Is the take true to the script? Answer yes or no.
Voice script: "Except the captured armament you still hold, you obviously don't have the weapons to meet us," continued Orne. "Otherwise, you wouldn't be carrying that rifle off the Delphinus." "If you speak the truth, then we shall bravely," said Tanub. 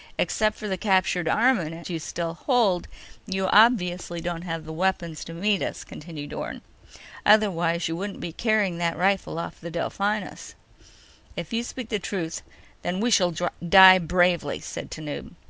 no